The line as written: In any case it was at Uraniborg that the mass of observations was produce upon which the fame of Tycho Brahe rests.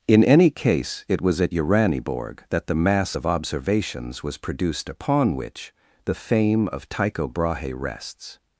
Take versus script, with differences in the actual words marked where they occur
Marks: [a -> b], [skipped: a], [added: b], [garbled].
In any case it was at Uraniborg that the mass of observations was [produce -> produced] upon which the fame of Tycho Brahe rests.